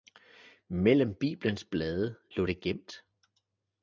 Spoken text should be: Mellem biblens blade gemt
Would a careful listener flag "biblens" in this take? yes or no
no